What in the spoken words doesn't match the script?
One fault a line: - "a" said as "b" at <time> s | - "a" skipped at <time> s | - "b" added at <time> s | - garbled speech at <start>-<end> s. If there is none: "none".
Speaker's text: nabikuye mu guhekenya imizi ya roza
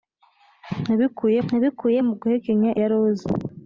- "nabikuye" added at 1.5 s
- "imizi" skipped at 2.7 s